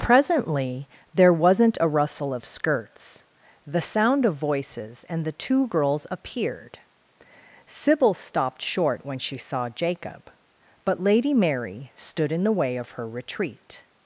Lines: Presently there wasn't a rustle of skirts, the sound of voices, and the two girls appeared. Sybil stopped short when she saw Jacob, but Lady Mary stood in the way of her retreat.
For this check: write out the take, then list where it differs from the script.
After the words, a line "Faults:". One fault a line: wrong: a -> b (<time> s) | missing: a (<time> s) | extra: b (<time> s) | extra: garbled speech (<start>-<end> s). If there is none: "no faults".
Presently there wasn't a rustle of skirts, the sound of voices, and the two girls appeared. Sybil stopped short when she saw Jacob, but Lady Mary stood in the way of her retreat.
Faults:
no faults